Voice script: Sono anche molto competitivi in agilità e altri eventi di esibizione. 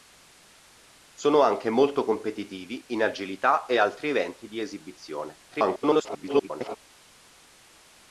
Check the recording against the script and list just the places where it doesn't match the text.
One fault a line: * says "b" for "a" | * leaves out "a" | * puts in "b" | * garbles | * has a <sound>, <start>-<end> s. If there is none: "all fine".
* garbles